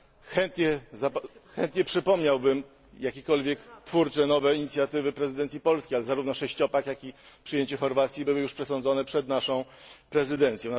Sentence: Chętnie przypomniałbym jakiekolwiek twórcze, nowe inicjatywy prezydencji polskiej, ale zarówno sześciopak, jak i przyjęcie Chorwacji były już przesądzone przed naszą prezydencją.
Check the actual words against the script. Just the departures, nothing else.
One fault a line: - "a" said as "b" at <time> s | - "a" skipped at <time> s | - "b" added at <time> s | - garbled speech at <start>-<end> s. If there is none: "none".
none